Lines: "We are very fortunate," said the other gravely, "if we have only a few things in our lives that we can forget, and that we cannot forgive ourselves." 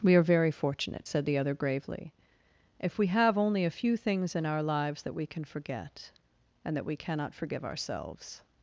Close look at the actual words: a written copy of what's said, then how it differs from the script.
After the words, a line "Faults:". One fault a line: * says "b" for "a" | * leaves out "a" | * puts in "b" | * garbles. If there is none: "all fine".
"We are very fortunate," said the other gravely, "if we have only a few things in our lives that we can forget, and that we cannot forgive ourselves."
Faults:
all fine